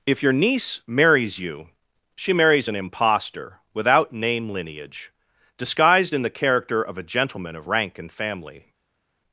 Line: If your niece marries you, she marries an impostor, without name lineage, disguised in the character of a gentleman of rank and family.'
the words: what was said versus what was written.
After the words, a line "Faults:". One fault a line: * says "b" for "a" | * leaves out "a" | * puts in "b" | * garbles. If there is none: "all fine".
If your niece marries you, she marries an impostor, without name lineage, disguised in the character of a gentleman of rank and family.'
Faults:
all fine